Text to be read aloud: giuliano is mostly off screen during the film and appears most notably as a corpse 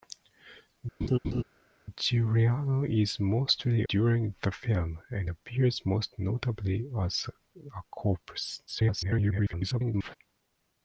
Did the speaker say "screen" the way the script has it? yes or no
no